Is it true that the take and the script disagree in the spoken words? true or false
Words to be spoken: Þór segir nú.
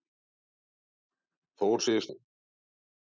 false